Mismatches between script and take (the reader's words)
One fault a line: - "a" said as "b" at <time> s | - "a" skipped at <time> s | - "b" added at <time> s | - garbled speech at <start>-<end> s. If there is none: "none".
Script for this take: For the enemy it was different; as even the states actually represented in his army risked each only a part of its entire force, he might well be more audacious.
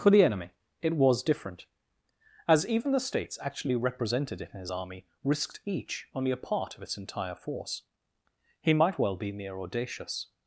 - "more" said as "mere" at 9.3 s